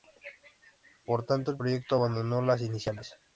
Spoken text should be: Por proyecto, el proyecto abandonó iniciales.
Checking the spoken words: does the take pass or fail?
fail